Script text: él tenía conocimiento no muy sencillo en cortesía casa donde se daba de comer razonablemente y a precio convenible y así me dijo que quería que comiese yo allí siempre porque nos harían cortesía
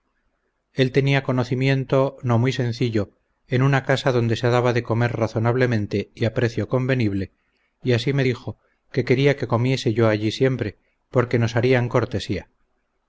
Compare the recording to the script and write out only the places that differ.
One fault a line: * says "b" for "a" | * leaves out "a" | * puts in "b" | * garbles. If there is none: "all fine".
* says "una" for "cortesía"